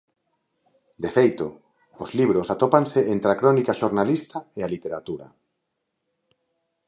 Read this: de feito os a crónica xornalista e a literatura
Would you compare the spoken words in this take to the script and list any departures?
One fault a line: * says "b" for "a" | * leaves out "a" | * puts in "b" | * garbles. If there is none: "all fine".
* puts in "libros atópanse entre"